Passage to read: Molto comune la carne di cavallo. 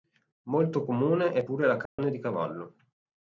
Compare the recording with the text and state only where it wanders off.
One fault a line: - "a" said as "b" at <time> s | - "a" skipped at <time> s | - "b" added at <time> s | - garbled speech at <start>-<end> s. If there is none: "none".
- "è pure" added at 1.3 s